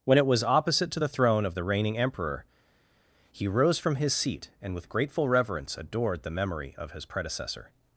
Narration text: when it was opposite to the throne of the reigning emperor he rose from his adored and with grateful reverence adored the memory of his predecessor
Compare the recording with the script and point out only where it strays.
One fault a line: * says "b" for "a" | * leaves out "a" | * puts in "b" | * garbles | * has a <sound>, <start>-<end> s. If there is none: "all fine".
* says "seat" for "adored"